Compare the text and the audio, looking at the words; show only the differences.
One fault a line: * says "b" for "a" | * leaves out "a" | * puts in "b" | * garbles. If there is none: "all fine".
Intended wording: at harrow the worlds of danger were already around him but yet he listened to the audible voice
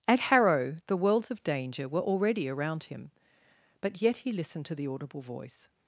all fine